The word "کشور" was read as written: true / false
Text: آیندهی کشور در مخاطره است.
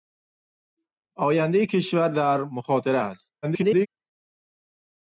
true